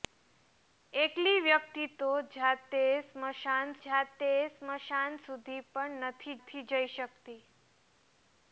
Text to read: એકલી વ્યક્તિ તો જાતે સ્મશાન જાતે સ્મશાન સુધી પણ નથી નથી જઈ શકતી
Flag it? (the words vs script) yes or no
no